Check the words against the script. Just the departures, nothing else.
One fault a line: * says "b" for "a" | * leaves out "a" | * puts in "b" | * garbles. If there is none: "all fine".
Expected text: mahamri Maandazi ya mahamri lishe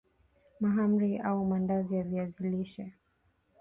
* puts in "au"
* says "viazi" for "mahamri"